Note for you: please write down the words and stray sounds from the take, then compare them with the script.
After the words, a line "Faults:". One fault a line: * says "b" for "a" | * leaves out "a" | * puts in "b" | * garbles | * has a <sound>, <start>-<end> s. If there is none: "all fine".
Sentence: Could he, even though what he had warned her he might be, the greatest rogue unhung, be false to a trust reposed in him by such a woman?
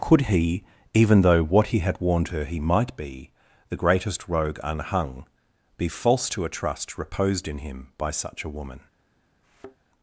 Could he, even though what he had warned her he might be, the greatest rogue unhung, be false to a trust reposed in him by such a woman?
Faults:
* has a thud, 9.4-9.8 s